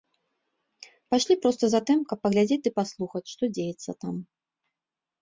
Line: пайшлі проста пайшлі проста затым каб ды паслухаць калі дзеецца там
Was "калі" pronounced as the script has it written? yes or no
no